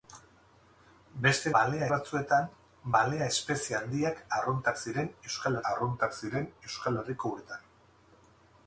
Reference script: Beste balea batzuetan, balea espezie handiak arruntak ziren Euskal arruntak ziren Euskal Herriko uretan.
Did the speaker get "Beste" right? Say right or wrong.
right